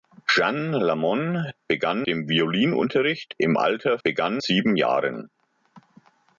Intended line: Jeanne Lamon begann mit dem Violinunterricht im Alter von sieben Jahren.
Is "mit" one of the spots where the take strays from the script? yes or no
yes